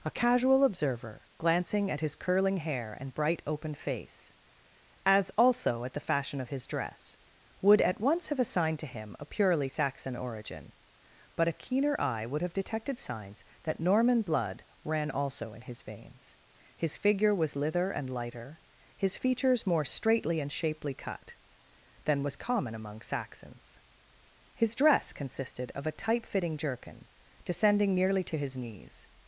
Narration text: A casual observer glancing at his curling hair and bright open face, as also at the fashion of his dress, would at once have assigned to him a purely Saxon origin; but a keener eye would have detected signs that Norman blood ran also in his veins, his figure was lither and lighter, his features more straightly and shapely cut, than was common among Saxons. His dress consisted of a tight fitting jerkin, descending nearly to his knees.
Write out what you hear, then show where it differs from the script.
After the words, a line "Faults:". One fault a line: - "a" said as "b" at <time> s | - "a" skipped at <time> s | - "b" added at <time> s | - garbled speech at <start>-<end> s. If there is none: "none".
A casual observer glancing at his curling hair and bright open face, as also at the fashion of his dress, would at once have assigned to him a purely Saxon origin; but a keener eye would have detected signs that Norman blood ran also in his veins, his figure was lither and lighter, his features more straightly and shapely cut, than was common among Saxons. His dress consisted of a tight fitting jerkin, descending nearly to his knees.
Faults:
none